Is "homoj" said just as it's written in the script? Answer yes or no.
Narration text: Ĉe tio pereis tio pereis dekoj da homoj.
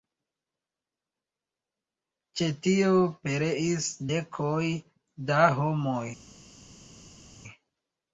yes